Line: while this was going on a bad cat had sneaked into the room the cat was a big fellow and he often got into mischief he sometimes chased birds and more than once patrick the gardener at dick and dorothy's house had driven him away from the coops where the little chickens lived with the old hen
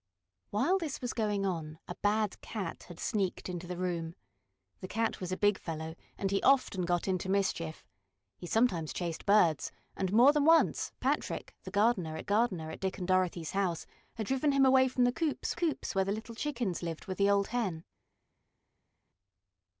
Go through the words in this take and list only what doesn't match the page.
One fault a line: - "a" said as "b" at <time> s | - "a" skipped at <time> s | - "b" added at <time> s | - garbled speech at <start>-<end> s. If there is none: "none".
- "gardener at" added at 12.3 s
- "coops" added at 15.5 s